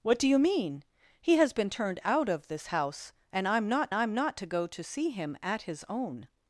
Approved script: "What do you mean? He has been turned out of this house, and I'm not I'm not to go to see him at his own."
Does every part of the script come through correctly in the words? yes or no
yes